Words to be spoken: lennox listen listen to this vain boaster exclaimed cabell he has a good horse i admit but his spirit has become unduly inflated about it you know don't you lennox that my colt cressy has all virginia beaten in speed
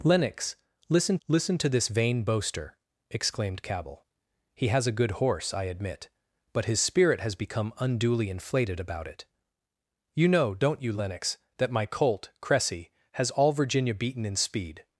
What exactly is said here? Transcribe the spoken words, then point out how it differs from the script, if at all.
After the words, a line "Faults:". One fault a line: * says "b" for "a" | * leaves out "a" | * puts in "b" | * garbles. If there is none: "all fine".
lennox listen listen to this vain boaster exclaimed cabell he has a good horse i admit but his spirit has become unduly inflated about it you know don't you lennox that my colt cressy has all virginia beaten in speed
Faults:
all fine